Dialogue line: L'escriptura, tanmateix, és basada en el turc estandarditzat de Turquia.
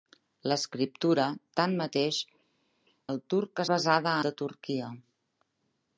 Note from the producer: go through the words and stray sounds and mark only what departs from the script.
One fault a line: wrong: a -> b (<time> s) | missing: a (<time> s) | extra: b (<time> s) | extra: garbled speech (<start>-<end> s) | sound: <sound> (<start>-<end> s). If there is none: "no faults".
missing: és basada en (2.2 s)
wrong: estandarditzat -> basada (3.7 s)